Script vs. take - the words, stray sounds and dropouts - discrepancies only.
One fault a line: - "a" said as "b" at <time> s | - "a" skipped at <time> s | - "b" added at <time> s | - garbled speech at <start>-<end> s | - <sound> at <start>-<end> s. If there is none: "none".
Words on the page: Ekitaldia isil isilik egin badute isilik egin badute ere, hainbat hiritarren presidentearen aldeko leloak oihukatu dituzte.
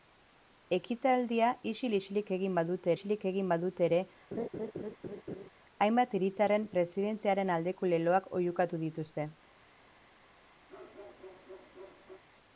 - laugh at 4.3-5.5 s
- bark at 10.7-12.2 s